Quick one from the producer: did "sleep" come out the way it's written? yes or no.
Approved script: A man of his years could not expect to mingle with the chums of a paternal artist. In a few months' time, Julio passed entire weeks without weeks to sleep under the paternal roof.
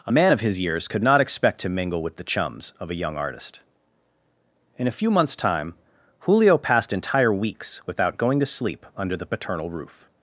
yes